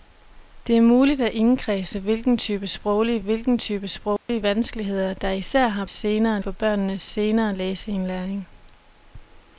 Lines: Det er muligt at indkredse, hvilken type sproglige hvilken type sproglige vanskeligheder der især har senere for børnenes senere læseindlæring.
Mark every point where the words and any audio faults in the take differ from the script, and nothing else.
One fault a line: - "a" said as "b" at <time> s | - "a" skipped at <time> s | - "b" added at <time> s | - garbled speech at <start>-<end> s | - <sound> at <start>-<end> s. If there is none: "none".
- dropout at 4.2-4.3 s